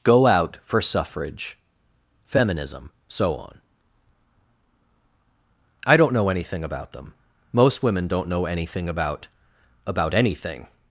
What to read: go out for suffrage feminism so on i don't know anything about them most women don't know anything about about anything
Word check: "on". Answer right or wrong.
right